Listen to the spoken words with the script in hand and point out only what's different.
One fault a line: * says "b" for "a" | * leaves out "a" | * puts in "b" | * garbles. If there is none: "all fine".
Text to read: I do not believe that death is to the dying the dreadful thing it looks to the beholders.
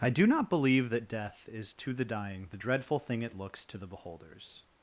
all fine